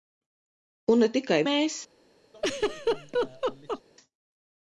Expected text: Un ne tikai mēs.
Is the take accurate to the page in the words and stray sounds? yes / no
no